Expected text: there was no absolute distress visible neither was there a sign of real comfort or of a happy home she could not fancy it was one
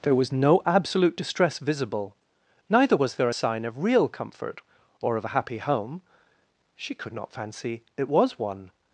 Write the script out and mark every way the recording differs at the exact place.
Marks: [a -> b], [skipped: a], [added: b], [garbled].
there was no absolute distress visible neither was there a sign of real comfort or of a happy home she could not fancy it was one